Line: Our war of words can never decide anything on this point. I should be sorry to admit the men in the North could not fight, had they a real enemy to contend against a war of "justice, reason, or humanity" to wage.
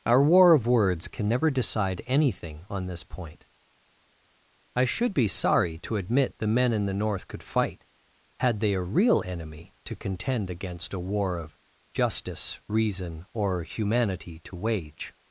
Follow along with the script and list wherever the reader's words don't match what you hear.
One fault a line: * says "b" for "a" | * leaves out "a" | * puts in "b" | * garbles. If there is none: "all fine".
* leaves out "not"